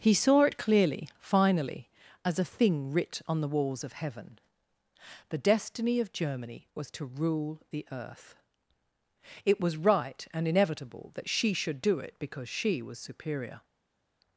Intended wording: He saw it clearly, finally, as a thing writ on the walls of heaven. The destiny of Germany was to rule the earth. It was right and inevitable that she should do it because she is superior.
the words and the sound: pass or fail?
fail